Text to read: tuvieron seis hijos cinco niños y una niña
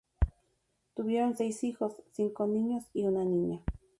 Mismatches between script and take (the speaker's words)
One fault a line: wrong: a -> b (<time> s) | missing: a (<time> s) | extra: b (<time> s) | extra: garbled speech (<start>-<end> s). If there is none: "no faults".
no faults